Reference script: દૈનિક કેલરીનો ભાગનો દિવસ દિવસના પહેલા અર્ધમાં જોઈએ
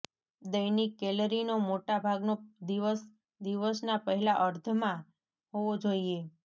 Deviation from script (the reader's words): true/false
true